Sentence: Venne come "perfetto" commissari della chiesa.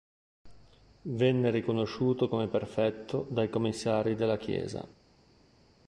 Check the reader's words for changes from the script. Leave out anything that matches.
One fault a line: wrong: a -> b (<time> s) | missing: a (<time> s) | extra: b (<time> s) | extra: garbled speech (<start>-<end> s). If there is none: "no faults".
extra: riconosciuto (1.5 s)
extra: dai (3.3 s)